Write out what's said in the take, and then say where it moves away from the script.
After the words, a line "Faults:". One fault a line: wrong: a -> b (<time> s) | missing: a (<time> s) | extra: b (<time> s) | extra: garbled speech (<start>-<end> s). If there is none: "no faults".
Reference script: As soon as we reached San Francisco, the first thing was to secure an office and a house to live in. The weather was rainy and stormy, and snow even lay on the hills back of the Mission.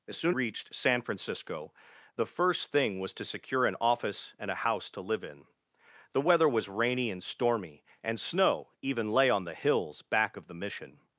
As soon reached San Francisco, the first thing was to secure an office and a house to live in. The weather was rainy and stormy, and snow even lay on the hills back of the Mission.
Faults:
missing: as we (0.3 s)